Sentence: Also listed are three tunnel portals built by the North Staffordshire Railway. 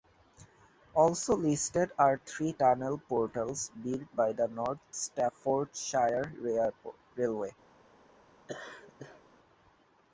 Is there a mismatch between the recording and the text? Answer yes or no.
no